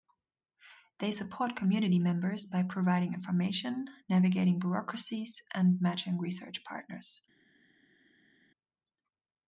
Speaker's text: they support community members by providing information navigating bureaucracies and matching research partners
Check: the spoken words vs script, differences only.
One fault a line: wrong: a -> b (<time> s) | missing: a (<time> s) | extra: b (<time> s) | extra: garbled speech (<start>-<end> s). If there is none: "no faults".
no faults